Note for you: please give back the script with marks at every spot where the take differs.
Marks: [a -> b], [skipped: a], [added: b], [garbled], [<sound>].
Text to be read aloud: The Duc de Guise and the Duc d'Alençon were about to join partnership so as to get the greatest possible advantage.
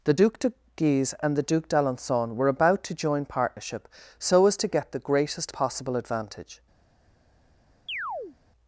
The Duc de Guise and the Duc d'Alençon were about to join partnership so as to get the greatest possible advantage. [chirp]